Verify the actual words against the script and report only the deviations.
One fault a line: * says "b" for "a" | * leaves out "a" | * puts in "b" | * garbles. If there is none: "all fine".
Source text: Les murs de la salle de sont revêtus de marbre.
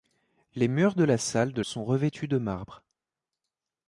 all fine